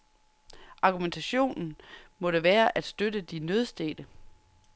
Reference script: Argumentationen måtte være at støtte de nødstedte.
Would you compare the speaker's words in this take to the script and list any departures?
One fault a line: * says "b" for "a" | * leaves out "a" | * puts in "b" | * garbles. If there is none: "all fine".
all fine